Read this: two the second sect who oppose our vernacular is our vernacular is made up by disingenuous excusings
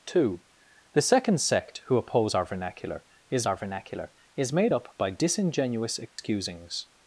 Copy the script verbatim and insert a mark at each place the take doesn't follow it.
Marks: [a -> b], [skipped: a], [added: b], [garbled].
two the second sect who oppose our vernacular is our vernacular is made up by disingenuous excusings